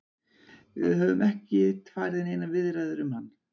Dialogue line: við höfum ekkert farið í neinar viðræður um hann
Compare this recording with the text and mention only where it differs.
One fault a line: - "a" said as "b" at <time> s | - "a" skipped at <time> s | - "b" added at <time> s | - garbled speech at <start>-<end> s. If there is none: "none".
none